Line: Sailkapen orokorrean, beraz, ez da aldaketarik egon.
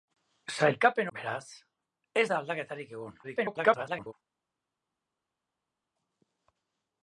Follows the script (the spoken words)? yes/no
no